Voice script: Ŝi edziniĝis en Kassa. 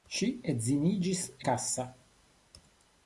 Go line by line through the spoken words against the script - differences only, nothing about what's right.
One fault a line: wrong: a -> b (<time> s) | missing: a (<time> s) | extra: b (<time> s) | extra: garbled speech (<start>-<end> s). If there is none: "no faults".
missing: en (1.2 s)